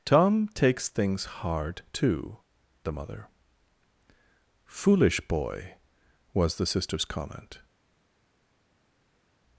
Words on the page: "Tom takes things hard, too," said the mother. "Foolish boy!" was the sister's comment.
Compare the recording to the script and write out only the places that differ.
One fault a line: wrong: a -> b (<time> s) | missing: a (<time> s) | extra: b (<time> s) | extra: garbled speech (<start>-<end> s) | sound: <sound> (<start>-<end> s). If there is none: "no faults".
missing: said (2.4 s)